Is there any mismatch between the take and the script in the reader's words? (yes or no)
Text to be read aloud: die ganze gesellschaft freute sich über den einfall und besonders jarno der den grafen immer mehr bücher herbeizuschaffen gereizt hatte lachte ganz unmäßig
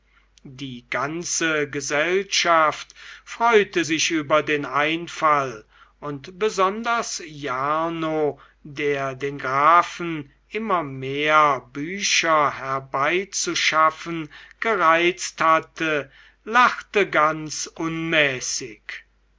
no